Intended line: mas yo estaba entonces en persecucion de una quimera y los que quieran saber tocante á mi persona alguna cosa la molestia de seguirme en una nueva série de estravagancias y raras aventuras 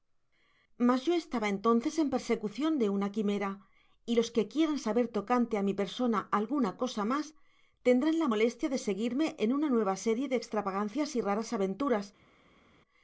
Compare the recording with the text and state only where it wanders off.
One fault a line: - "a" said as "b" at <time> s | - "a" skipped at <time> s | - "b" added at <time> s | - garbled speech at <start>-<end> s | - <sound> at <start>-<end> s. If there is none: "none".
- "mas tendrán" added at 7.1 s